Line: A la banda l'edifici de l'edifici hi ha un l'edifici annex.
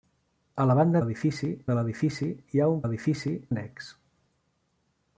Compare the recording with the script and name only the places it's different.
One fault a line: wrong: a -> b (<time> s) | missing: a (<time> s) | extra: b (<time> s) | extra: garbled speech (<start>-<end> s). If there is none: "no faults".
no faults